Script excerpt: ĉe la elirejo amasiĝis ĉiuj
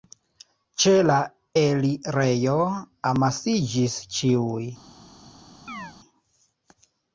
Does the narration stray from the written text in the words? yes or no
no